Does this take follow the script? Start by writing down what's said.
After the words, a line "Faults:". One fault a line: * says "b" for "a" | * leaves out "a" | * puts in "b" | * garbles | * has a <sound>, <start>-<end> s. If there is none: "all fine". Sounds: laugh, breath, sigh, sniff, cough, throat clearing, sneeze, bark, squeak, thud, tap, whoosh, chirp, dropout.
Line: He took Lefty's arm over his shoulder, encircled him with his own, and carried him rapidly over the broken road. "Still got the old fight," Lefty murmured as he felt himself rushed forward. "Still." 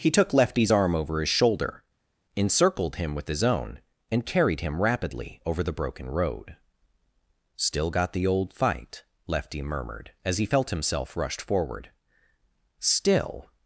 He took Lefty's arm over his shoulder, encircled him with his own, and carried him rapidly over the broken road. "Still got the old fight," Lefty murmured as he felt himself rushed forward. "Still."
Faults:
all fine